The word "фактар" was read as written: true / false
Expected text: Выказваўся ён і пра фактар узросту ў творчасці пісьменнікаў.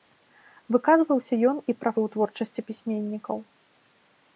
false